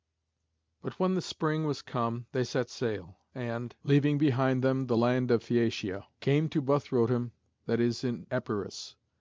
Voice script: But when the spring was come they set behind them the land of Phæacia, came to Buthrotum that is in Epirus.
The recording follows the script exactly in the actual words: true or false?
false